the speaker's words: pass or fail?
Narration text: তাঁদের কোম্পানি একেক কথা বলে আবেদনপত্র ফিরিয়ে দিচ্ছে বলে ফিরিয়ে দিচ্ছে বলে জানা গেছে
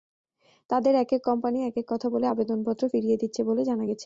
fail